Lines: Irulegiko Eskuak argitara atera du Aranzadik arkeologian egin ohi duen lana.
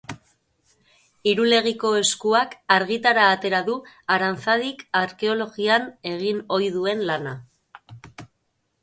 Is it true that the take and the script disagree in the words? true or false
false